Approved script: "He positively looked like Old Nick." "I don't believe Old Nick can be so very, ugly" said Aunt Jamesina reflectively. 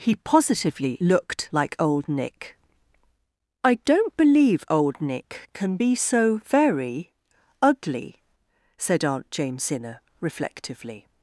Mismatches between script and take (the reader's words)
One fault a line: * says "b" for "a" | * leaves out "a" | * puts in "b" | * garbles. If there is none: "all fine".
all fine